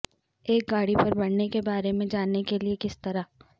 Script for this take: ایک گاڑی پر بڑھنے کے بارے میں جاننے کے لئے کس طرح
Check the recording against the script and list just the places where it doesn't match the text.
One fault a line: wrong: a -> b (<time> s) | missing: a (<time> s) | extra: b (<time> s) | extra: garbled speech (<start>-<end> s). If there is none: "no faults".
no faults